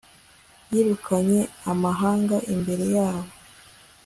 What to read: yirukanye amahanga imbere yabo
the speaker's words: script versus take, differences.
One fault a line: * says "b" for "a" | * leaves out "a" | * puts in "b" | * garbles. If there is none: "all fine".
all fine